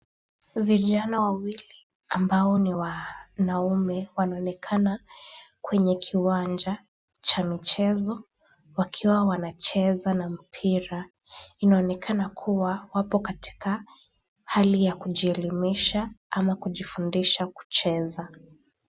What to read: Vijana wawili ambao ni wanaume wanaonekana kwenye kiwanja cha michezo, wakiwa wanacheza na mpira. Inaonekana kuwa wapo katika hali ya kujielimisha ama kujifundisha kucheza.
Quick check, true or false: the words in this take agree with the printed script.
true